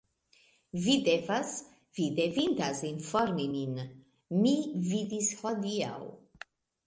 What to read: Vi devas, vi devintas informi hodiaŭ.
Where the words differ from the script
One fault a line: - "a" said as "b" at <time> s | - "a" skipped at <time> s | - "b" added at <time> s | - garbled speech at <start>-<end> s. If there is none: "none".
- "min Mi vidis" added at 3.6 s